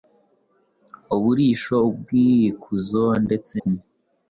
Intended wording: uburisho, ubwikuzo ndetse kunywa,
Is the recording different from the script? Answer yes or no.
no